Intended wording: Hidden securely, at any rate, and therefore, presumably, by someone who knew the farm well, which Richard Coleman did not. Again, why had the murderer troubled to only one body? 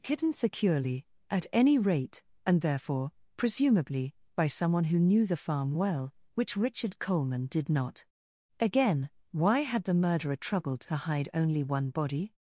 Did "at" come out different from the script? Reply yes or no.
no